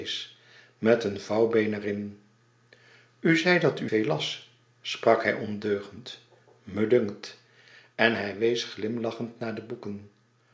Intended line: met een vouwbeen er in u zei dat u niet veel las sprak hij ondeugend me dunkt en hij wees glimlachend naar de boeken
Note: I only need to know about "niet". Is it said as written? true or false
false